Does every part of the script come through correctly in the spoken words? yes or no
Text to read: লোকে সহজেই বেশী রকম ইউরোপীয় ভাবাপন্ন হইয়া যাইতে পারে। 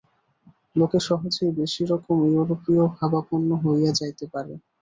yes